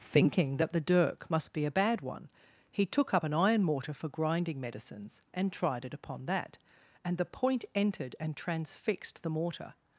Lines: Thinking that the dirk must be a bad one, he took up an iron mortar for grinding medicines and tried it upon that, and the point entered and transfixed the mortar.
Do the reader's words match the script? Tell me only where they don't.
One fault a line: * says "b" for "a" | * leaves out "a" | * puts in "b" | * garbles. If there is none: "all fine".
all fine